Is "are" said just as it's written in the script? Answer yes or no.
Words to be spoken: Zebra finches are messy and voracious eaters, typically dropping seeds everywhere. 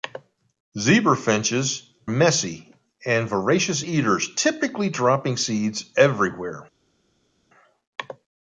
no